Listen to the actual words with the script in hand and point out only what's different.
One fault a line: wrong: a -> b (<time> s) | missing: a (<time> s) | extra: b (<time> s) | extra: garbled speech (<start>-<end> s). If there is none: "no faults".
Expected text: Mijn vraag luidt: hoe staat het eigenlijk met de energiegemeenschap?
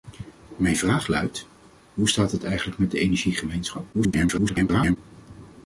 extra: garbled speech (3.9-5.0 s)